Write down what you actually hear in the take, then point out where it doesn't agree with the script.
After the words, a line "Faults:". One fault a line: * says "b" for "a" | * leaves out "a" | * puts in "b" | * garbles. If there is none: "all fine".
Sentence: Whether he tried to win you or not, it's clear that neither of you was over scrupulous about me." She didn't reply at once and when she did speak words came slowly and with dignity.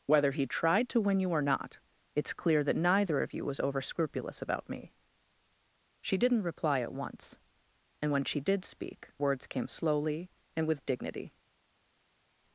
Whether he tried to win you or not, it's clear that neither of you was over scrupulous about me." She didn't reply at once and when she did speak words came slowly and with dignity.
Faults:
all fine